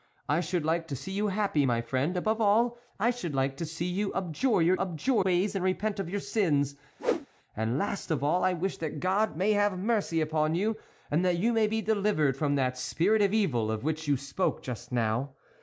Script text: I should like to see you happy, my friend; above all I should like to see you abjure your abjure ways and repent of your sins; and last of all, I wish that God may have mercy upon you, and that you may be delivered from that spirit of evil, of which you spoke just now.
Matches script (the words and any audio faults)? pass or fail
fail